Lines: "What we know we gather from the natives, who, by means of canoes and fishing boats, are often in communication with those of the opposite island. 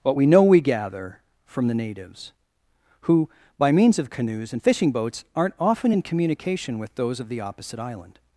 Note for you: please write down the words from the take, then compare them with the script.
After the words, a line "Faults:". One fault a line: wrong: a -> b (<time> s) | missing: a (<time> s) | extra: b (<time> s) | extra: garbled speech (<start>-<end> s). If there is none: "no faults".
"What we know we gather from the natives, who, by means of canoes and fishing boats, aren't often in communication with those of the opposite island.
Faults:
wrong: are -> aren't (5.3 s)